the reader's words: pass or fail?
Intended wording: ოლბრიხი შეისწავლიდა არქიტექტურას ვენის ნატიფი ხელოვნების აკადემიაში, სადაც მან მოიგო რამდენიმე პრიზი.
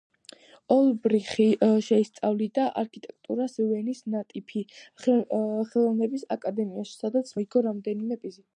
fail